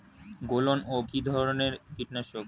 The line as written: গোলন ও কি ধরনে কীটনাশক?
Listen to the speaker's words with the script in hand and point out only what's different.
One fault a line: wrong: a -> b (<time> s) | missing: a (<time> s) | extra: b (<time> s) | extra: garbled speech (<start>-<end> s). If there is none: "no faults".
no faults